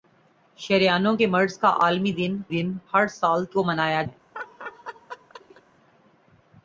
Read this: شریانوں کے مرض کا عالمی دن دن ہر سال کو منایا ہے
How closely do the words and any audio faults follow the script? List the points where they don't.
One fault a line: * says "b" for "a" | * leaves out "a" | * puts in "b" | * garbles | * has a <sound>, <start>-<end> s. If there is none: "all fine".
* has a laugh, 4.3-5.6 s